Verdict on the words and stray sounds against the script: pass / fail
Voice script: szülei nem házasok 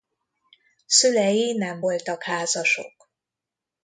fail